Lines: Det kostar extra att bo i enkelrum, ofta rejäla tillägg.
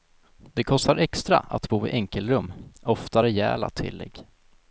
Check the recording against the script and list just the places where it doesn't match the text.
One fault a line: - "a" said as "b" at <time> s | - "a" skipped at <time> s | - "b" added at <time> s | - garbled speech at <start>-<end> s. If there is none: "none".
none